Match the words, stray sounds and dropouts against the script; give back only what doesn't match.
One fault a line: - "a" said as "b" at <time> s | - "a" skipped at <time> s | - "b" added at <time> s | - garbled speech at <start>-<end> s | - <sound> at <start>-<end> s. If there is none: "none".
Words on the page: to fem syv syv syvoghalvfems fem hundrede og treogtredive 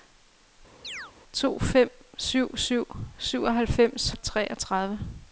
- chirp at 0.8-1.1 s
- "fem hundrede" skipped at 4.1 s